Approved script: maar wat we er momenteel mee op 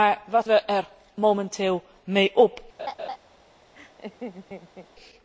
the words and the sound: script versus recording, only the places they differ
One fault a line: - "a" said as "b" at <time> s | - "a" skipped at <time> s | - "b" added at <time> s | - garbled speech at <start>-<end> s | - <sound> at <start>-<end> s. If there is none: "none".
- laugh at 2.8-3.2 s
- laugh at 3.7-4.9 s